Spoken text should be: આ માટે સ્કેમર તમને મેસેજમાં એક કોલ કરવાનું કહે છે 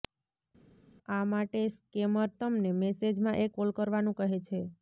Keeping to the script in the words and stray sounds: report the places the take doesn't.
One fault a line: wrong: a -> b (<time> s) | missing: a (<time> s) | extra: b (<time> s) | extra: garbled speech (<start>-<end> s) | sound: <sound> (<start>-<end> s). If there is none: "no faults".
no faults